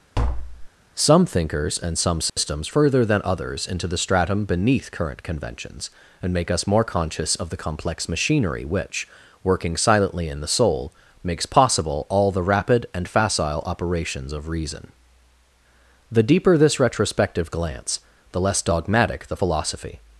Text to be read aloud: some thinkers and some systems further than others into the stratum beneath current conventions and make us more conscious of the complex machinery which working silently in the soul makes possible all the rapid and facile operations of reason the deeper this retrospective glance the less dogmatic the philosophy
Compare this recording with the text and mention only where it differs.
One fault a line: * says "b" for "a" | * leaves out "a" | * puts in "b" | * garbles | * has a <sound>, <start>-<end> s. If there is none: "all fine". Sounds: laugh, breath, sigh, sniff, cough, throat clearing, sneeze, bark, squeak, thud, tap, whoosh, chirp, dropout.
* has a tap, 0.1-0.7 s
* has a dropout, 2.3-2.4 s